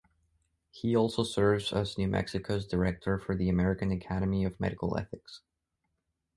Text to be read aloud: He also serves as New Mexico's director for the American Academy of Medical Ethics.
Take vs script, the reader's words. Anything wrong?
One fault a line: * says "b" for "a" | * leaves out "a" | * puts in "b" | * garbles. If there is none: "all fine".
all fine